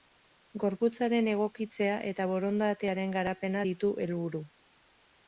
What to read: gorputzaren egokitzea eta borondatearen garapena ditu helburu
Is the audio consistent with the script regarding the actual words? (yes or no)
yes